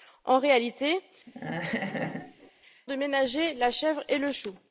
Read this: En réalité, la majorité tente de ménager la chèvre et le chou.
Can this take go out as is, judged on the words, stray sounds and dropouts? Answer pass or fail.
fail